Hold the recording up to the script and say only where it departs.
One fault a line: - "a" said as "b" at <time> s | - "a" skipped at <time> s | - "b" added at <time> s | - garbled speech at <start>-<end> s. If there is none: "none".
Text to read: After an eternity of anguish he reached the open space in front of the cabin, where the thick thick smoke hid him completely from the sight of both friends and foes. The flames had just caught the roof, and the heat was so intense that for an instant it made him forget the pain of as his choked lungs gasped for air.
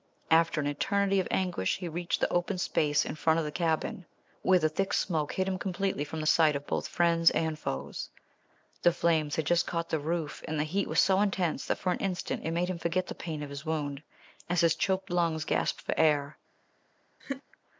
- "thick" skipped at 4.9 s
- "his wound" added at 13.5 s